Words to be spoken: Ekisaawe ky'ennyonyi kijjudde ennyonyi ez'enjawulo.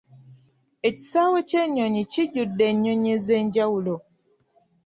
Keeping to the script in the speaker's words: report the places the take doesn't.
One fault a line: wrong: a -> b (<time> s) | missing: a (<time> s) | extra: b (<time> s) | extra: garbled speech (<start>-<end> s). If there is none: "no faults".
no faults